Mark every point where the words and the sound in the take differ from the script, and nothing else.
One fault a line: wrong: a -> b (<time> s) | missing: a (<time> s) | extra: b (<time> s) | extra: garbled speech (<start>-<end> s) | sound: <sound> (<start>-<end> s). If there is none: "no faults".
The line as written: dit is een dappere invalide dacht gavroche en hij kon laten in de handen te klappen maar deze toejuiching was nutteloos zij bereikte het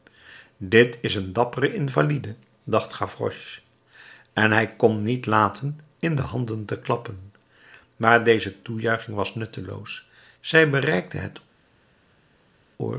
extra: niet (5.0 s)